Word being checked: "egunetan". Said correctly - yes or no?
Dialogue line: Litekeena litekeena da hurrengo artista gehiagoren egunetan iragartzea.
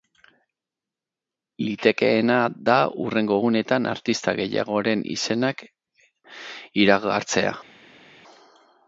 no